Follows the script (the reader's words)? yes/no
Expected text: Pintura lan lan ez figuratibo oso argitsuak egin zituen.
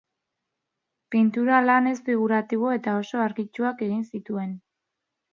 no